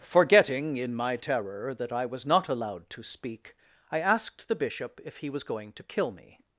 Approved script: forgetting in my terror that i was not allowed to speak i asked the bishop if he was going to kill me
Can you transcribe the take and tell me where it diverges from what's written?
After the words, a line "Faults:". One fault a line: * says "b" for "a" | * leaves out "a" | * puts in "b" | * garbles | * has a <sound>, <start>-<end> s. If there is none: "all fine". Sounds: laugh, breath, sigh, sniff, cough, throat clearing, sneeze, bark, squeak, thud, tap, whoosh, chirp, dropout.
forgetting in my terror that i was not allowed to speak i asked the bishop if he was going to kill me
Faults:
all fine